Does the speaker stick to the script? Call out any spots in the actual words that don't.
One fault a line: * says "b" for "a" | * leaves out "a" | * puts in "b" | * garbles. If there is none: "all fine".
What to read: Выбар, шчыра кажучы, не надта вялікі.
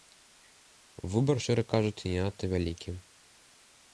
all fine